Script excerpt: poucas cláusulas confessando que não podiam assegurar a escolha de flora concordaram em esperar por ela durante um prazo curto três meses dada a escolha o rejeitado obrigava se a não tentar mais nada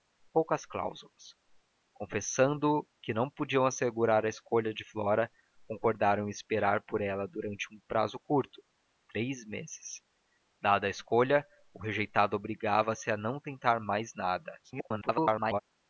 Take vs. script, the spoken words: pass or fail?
fail